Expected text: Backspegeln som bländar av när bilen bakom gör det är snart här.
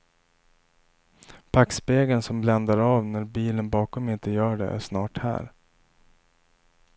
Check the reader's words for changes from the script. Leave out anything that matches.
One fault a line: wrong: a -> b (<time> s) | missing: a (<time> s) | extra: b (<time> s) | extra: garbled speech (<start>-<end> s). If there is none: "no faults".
extra: inte (4.1 s)